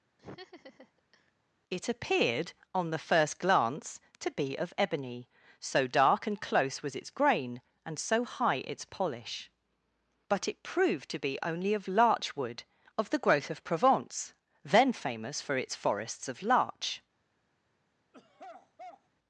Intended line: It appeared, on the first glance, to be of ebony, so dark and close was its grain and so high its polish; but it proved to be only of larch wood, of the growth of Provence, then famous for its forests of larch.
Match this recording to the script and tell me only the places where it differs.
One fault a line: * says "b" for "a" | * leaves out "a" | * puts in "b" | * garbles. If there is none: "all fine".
all fine